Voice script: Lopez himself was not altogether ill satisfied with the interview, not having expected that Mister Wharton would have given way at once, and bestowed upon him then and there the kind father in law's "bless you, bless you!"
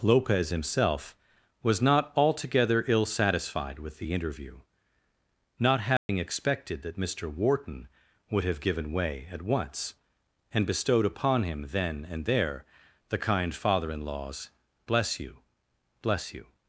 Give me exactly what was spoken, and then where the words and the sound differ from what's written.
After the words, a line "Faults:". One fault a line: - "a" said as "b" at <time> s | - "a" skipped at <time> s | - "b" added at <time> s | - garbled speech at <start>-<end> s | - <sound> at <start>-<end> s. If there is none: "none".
Lopez himself was not altogether ill satisfied with the interview, not having expected that Mister Wharton would have given way at once, and bestowed upon him then and there the kind father in law's "bless you, bless you!"
Faults:
- dropout at 6.0-6.1 s